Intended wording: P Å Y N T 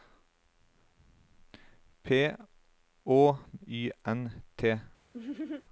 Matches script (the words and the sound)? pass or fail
fail